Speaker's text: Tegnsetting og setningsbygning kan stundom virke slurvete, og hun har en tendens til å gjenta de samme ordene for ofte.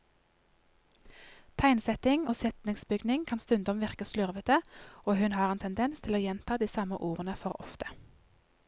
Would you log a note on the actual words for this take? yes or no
no